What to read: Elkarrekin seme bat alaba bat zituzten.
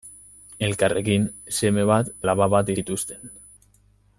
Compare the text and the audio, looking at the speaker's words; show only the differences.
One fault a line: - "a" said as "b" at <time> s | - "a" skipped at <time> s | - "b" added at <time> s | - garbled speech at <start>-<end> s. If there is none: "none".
none